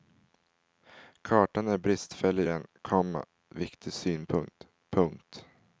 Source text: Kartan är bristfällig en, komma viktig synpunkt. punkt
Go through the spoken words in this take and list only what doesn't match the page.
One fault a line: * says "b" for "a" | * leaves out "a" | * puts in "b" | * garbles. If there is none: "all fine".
all fine